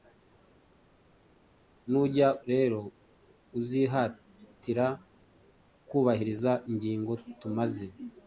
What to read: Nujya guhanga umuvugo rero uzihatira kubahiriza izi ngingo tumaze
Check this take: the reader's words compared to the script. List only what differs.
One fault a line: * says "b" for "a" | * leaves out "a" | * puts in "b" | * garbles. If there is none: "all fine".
* leaves out "guhanga umuvugo"
* leaves out "izi"